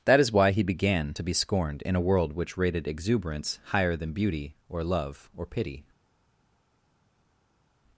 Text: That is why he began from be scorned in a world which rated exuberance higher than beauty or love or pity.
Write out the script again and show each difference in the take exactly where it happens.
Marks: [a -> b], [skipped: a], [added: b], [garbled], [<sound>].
That is why he began [from -> to] be scorned in a world which rated exuberance higher than beauty or love or pity.